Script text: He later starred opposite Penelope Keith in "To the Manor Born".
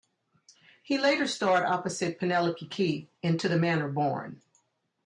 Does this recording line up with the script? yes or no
yes